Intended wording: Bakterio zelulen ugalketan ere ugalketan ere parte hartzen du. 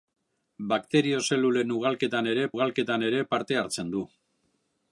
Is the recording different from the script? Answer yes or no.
no